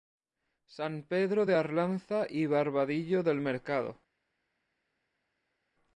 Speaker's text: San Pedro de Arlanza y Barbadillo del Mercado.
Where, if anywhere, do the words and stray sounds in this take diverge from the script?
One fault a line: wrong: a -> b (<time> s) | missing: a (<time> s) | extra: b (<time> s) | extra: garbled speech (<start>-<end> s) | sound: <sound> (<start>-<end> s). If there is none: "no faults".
no faults